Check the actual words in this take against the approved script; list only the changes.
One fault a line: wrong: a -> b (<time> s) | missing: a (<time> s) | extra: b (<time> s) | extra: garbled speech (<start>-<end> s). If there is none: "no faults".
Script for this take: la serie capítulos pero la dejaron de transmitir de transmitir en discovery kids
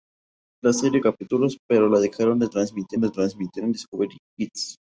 no faults